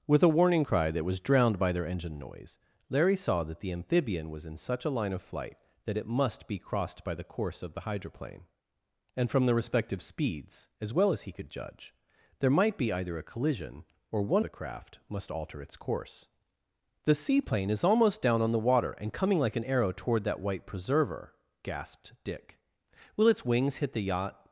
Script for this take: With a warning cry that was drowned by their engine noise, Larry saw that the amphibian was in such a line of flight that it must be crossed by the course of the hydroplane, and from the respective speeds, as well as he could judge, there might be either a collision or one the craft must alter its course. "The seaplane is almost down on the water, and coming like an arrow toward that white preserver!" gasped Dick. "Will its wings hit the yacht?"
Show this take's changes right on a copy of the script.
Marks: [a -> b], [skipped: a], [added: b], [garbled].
With a warning cry that was drowned by their engine noise, Larry saw that the amphibian was in such a line of flight that it must be crossed by the course of the hydroplane, and from the respective speeds, as well as he could judge, there might be either a collision or one the craft must alter its course. "The seaplane is almost down on the water, and coming like an arrow toward that white preserver!" gasped Dick. "Will its wings hit the yacht?"